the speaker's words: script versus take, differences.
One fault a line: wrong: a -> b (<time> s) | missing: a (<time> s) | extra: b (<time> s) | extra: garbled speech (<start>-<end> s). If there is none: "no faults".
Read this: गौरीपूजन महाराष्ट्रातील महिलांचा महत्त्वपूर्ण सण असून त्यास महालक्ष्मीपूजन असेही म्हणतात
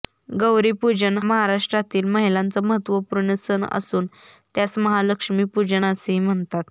no faults